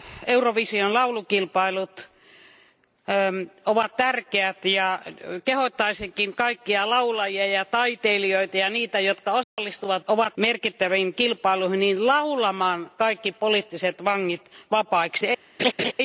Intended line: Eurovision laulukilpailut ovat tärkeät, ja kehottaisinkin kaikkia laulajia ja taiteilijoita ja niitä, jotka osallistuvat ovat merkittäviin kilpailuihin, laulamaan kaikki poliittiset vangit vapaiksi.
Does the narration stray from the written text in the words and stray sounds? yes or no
yes